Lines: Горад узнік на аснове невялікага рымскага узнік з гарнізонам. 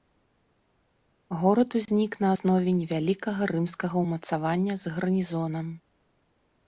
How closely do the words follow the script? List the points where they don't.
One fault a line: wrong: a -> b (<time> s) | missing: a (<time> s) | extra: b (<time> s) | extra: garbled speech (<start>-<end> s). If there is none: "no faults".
wrong: узнік -> ўмацавання (4.1 s)